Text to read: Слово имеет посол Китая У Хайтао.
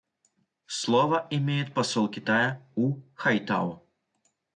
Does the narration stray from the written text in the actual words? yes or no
no